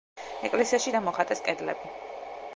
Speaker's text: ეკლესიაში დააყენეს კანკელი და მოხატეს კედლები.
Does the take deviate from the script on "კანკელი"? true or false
true